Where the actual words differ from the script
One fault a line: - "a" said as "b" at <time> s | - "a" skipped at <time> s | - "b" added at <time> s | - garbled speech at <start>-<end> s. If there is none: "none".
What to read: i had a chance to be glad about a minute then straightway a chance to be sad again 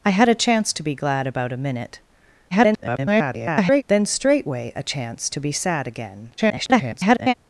- garbled speech at 2.5-3.8 s
- garbled speech at 6.4-7.3 s